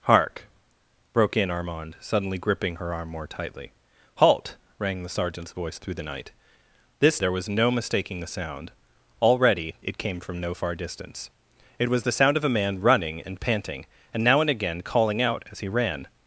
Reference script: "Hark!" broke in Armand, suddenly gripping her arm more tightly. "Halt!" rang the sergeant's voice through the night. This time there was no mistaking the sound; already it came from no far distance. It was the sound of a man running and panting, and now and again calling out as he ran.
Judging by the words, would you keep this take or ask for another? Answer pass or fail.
fail